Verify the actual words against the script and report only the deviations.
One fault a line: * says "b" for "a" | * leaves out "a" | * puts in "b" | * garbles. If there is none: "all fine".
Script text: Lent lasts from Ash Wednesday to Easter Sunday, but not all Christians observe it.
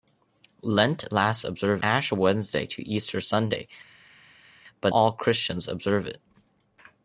* says "observe" for "from"
* leaves out "not"